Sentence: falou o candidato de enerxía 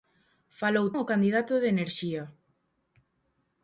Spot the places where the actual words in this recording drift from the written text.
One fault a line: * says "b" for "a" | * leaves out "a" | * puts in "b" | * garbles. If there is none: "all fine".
all fine